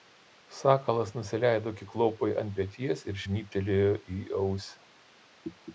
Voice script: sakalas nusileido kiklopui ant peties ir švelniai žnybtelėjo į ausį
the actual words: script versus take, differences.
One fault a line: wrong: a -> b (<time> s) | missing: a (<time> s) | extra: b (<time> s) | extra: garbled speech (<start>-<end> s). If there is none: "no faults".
missing: švelniai (3.2 s)